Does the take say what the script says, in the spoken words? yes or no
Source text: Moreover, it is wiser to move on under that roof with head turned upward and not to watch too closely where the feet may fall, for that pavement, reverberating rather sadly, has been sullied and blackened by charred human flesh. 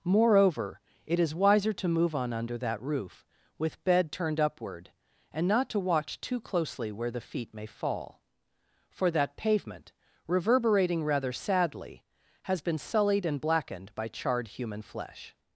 no